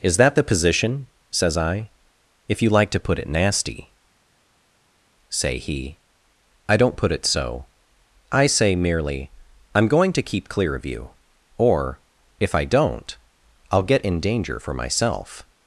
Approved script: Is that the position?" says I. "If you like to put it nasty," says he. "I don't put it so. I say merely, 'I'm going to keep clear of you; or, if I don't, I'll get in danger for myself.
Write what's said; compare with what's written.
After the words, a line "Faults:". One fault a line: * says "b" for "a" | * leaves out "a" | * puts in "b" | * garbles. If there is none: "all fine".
Is that the position?" says I. "If you like to put it nasty," say he. "I don't put it so. I say merely, 'I'm going to keep clear of you; or, if I don't, I'll get in danger for myself.
Faults:
* says "say" for "says"